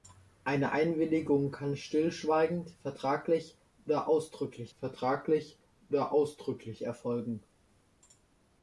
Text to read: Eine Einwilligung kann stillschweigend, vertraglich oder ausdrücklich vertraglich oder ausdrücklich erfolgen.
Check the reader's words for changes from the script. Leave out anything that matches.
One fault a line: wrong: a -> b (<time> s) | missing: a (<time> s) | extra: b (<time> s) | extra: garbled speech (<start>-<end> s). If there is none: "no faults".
no faults